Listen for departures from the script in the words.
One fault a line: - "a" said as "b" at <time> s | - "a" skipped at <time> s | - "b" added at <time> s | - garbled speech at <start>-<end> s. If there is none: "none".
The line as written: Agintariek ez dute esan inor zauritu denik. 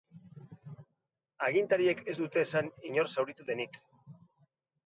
none